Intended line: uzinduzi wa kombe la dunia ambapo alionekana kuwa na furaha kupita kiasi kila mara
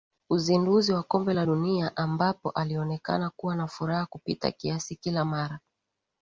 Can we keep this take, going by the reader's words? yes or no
yes